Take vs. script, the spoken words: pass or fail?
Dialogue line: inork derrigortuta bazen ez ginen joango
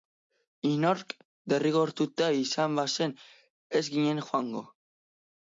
fail